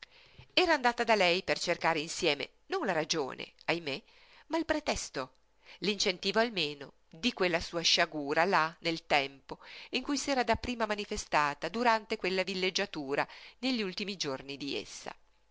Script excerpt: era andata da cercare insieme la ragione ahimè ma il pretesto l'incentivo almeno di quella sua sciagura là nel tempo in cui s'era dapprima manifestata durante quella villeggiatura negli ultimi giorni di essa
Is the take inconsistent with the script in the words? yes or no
yes